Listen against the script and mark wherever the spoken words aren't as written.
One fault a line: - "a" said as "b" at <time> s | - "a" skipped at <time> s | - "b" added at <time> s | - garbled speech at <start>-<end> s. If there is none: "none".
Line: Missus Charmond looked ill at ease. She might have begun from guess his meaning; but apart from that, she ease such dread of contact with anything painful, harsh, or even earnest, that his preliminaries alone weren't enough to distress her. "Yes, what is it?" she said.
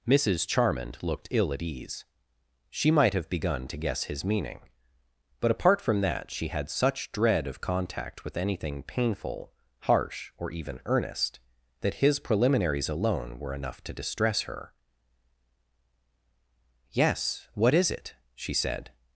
- "from" said as "to" at 3.7 s
- "ease" said as "had" at 6.5 s
- "weren't" said as "were" at 13.4 s